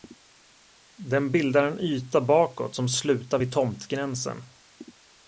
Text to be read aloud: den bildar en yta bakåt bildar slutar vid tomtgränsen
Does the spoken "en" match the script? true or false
true